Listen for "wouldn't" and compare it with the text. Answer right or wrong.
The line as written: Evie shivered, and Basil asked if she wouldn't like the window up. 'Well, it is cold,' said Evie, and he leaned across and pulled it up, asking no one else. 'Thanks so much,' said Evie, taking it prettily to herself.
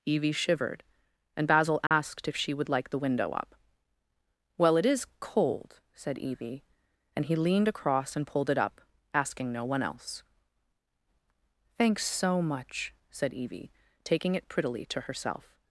wrong